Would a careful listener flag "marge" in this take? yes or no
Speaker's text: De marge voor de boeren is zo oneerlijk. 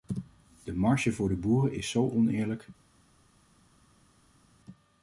no